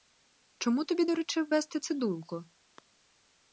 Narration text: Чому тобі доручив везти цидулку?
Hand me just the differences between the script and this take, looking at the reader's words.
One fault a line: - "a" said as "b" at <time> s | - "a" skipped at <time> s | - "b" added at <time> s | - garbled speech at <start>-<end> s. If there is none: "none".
none